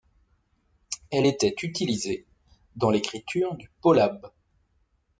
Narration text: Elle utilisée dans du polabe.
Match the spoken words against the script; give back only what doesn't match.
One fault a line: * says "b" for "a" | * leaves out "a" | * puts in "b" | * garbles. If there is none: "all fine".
* puts in "était"
* puts in "l'écriture"